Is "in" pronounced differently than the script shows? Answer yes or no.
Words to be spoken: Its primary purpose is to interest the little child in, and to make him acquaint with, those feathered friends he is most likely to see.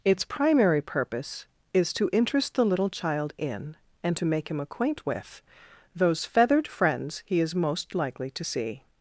no